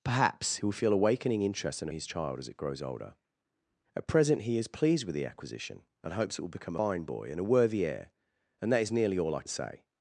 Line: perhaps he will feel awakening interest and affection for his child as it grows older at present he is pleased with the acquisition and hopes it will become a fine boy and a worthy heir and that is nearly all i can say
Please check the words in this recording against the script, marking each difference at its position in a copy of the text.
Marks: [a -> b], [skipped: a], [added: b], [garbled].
perhaps he will feel awakening interest and [skipped: affection for] his child as it grows older at present he is pleased with the acquisition and hopes it will become [skipped: a] fine boy and a worthy heir and that is nearly all i [skipped: can] say